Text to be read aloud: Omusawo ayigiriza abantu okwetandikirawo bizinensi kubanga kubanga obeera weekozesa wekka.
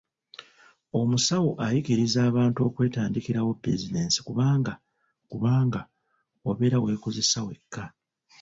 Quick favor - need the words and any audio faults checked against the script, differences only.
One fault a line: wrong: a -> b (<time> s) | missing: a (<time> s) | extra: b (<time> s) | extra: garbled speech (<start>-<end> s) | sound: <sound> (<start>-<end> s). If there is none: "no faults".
no faults